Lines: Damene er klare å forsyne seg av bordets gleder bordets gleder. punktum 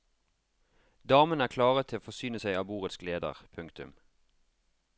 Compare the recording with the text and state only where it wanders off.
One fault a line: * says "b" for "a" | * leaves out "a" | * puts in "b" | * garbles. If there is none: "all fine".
* puts in "til"
* leaves out "bordets gleder"